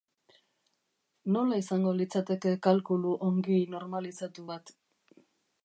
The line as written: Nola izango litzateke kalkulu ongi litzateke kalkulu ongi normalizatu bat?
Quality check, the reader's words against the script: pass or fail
fail